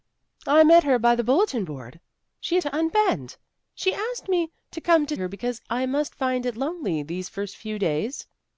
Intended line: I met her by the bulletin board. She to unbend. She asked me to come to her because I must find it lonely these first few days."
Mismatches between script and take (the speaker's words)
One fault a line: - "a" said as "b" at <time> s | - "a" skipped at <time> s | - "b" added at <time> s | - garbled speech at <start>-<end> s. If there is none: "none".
none